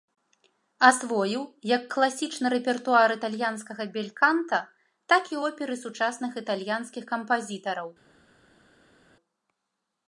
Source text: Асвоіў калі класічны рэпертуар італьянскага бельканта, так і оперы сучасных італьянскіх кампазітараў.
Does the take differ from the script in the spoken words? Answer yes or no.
yes